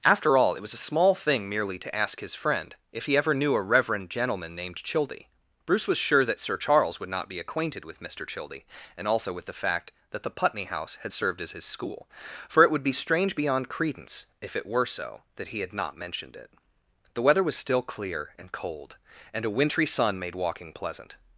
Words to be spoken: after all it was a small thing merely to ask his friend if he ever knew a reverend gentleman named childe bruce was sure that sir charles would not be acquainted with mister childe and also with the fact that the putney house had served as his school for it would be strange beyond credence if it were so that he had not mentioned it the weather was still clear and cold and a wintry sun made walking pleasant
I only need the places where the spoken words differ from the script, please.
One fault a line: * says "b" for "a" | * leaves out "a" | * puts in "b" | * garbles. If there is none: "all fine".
all fine